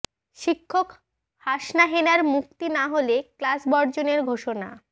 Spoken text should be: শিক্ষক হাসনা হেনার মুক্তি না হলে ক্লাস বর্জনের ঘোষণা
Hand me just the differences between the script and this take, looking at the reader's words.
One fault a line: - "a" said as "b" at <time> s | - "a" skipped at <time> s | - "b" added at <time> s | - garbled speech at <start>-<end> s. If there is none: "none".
none